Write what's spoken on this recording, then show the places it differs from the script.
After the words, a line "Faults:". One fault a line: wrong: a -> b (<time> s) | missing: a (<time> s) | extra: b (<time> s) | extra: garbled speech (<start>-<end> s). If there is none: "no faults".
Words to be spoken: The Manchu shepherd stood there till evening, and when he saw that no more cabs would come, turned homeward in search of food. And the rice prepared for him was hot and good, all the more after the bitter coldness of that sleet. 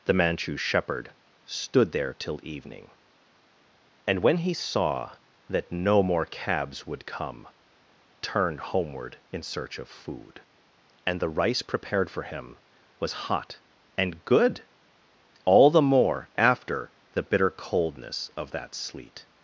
The Manchu shepherd stood there till evening, and when he saw that no more cabs would come, turned homeward in search of food. And the rice prepared for him was hot and good, all the more after the bitter coldness of that sleet.
Faults:
no faults